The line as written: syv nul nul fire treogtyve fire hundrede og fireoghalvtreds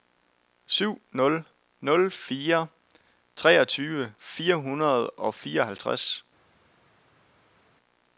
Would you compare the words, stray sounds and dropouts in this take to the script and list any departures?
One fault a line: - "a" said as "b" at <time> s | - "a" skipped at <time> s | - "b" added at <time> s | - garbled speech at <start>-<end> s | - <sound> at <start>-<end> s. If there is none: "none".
none